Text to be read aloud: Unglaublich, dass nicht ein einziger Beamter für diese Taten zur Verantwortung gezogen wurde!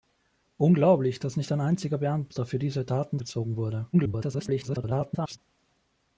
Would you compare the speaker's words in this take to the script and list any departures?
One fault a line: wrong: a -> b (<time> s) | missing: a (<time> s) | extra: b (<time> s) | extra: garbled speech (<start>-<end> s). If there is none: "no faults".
missing: zur Verantwortung (3.2 s)
extra: garbled speech (3.9-5.4 s)